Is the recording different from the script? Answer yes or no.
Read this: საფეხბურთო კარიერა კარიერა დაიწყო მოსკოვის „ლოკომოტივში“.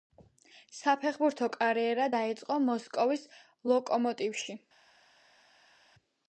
yes